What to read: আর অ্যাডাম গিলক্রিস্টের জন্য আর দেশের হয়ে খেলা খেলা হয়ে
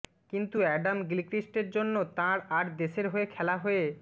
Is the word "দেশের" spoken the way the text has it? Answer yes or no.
yes